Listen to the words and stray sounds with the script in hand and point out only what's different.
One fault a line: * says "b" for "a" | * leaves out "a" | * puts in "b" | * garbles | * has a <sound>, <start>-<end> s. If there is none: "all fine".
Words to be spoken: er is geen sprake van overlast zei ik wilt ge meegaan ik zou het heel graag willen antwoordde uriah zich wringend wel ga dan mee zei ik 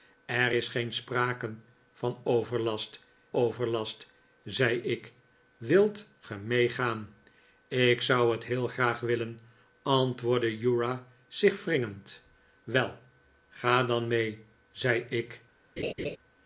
* puts in "overlast"
* has a laugh, 15.8-16.2 s